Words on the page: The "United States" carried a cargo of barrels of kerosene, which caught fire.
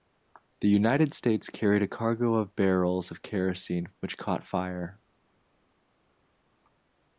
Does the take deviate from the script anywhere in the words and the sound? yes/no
no